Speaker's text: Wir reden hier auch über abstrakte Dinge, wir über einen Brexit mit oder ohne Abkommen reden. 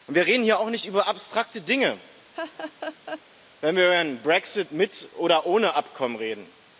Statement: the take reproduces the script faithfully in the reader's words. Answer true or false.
false